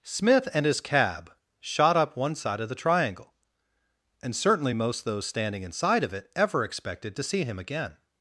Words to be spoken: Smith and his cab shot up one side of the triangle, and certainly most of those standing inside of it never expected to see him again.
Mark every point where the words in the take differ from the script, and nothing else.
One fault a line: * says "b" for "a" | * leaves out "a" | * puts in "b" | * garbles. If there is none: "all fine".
* leaves out "of"
* says "ever" for "never"